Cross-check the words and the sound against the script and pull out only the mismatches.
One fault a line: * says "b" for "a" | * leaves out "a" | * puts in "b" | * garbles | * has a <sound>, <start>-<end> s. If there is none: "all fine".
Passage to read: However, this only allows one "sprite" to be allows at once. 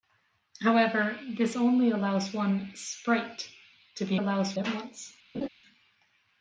* has a laugh, 5.3-5.5 s